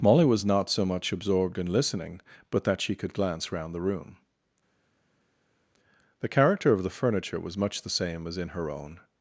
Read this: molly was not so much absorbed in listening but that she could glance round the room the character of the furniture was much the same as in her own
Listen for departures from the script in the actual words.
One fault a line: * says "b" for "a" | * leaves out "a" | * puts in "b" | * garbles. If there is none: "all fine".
all fine